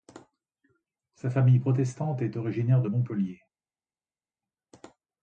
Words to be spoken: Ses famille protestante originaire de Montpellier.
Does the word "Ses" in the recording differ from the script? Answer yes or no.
yes